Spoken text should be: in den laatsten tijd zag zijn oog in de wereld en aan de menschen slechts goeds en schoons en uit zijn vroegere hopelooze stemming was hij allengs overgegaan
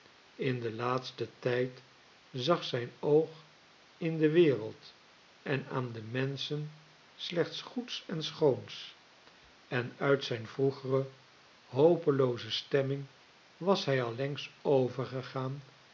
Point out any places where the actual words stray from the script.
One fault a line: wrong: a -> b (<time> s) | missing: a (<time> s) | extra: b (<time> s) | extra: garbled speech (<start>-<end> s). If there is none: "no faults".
no faults